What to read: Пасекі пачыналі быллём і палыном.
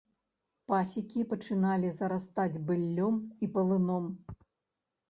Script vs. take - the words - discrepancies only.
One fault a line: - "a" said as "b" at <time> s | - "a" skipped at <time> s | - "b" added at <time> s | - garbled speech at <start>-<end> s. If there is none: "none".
- "зарастаць" added at 2.0 s